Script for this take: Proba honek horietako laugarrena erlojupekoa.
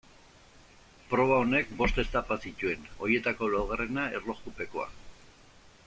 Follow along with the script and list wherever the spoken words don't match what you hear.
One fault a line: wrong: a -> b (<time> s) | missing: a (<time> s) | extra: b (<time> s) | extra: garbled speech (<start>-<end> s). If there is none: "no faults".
extra: bost etapa zituen (1.8 s)